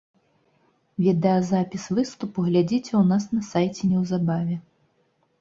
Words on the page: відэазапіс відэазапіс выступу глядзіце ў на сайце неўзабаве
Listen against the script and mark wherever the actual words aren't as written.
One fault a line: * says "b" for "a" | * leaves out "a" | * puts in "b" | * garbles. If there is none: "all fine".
* leaves out "відэазапіс"
* puts in "нас"